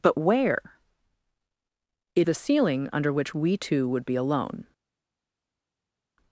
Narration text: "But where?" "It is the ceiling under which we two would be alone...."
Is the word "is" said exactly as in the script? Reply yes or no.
no